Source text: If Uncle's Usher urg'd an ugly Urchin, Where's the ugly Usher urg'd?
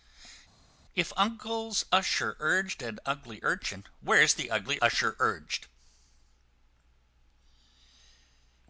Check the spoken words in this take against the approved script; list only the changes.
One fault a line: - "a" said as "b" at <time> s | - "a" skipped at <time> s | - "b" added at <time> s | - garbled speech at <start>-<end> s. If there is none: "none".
none